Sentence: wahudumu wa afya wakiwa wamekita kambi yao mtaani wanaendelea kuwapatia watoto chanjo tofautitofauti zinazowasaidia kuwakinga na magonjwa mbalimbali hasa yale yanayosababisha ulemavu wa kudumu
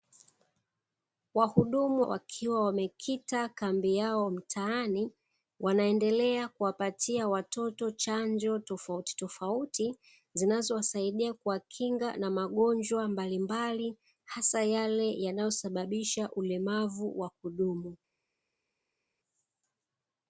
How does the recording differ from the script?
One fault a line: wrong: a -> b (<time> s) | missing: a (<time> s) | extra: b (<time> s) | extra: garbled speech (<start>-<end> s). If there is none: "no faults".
missing: wa afya (2.0 s)